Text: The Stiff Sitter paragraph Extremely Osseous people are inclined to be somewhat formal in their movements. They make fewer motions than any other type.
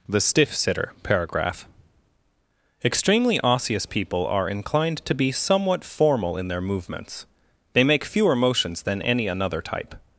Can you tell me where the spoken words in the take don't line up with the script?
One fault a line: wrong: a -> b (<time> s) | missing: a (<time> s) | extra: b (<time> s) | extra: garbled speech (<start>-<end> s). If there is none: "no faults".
wrong: other -> another (9.3 s)